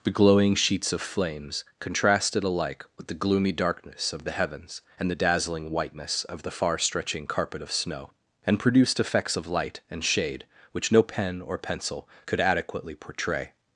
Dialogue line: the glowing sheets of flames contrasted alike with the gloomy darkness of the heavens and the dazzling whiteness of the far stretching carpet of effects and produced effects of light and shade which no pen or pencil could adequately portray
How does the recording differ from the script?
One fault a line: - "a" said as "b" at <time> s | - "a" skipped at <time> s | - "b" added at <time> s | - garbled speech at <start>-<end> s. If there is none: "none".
- "effects" said as "snow" at 7.7 s